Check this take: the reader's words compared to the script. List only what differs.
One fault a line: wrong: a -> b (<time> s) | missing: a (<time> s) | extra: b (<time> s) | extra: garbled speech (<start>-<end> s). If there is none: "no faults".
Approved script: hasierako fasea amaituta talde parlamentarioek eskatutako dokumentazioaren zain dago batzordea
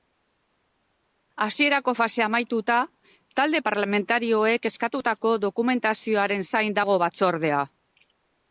no faults